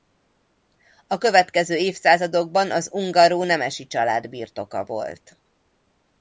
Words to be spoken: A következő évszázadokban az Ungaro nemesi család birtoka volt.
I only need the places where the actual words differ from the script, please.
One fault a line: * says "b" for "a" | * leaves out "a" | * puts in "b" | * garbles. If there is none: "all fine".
all fine